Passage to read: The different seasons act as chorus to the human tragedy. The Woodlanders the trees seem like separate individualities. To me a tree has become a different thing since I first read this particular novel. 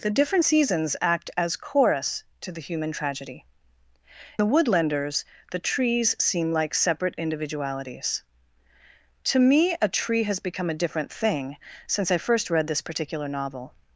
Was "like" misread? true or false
false